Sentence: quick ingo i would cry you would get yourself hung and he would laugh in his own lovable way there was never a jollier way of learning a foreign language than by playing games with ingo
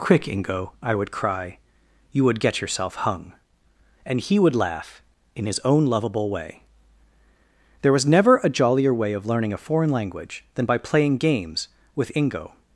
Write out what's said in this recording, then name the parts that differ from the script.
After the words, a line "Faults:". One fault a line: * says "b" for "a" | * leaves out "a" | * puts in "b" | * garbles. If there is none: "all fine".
quick ingo i would cry you would get yourself hung and he would laugh in his own lovable way there was never a jollier way of learning a foreign language than by playing games with ingo
Faults:
all fine